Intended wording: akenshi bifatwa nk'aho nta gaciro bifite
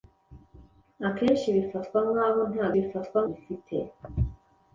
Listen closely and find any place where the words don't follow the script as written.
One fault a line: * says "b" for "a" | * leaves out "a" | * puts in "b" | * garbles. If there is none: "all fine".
* says "bifatwa" for "gaciro"